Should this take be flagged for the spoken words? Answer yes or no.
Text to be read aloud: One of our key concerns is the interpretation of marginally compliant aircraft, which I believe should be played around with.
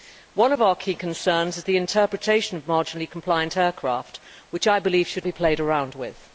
no